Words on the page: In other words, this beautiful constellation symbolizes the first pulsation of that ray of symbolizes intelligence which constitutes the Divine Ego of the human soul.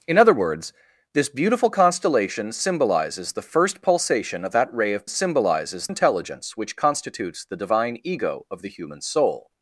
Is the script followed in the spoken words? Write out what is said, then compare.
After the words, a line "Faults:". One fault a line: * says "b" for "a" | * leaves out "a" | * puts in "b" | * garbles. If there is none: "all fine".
In other words, this beautiful constellation symbolizes the first pulsation of that ray of symbolizes intelligence which constitutes the Divine Ego of the human soul.
Faults:
all fine